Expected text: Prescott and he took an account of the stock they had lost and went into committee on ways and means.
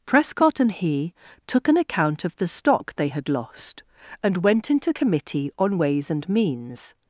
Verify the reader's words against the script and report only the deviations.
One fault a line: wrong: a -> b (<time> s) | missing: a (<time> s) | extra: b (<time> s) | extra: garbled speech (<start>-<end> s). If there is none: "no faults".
no faults